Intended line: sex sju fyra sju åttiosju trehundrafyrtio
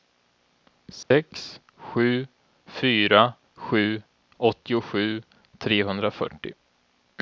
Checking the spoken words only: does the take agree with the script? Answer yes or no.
yes